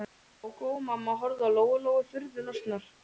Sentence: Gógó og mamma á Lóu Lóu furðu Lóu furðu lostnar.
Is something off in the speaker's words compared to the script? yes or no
yes